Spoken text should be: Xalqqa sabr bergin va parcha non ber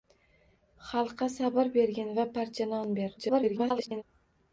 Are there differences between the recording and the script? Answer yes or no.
yes